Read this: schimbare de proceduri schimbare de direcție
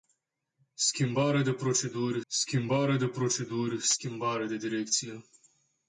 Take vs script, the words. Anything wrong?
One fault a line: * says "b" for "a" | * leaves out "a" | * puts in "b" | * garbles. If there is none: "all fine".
* puts in "proceduri schimbare de"